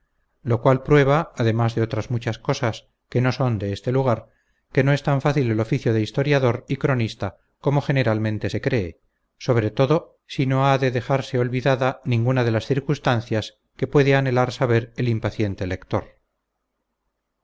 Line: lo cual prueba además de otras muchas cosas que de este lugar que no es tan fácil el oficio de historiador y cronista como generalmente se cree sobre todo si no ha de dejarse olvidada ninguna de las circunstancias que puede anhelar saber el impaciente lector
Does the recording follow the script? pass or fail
fail